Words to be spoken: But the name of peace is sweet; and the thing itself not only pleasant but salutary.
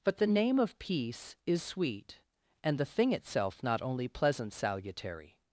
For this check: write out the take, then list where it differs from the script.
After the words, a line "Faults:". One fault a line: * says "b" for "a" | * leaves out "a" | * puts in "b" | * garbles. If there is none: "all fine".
But the name of peace is sweet; and the thing itself not only pleasant salutary.
Faults:
* leaves out "but"